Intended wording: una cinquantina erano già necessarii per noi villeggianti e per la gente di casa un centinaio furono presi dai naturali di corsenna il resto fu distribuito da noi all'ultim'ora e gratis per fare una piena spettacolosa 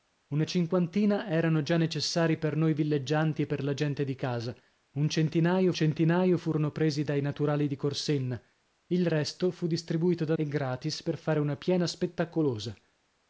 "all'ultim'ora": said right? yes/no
no